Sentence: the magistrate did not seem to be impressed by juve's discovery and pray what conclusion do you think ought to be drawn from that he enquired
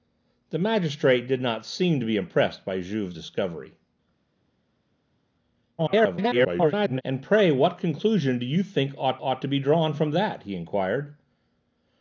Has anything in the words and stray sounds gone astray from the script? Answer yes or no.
yes